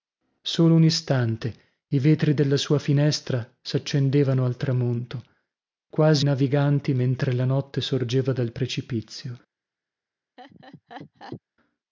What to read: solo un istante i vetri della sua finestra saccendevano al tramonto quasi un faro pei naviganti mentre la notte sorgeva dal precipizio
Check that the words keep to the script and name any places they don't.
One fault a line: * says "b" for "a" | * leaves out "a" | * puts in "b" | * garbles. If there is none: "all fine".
* leaves out "un faro pei"